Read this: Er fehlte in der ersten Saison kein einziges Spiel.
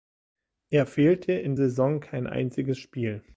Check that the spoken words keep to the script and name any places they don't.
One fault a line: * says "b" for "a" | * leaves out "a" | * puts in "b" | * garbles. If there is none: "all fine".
* leaves out "der ersten"